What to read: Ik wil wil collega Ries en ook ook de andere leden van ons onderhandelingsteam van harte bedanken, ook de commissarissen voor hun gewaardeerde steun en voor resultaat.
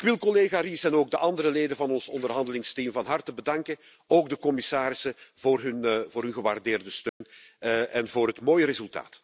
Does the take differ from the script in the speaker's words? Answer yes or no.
yes